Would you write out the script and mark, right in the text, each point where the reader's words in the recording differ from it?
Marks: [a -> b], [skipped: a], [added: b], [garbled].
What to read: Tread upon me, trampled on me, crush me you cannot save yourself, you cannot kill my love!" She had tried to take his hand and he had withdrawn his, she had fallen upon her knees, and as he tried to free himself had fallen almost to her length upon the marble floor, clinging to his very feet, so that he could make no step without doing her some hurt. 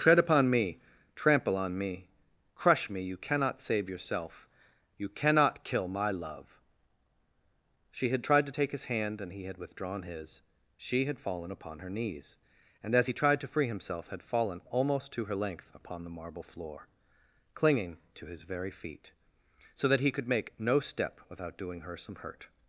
Tread upon me, [trampled -> trample] on me, crush me you cannot save yourself, you cannot kill my love!" She had tried to take his hand and he had withdrawn his, she had fallen upon her knees, and as he tried to free himself had fallen almost to her length upon the marble floor, clinging to his very feet, so that he could make no step without doing her some hurt.